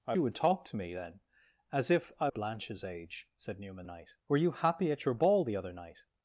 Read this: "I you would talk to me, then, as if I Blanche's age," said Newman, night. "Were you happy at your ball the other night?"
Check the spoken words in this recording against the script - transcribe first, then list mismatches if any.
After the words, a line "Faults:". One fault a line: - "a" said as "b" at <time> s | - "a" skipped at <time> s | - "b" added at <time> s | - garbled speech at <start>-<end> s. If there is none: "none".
"I you would talk to me, then, as if I Blanche's age," said Newman, night. "Were you happy at your ball the other night?"
Faults:
none